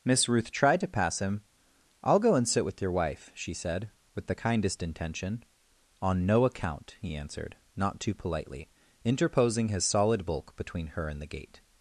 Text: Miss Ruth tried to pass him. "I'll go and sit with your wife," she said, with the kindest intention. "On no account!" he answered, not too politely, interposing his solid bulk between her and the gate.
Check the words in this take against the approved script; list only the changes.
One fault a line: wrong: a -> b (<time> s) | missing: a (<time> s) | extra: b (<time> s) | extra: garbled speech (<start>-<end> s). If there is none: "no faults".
no faults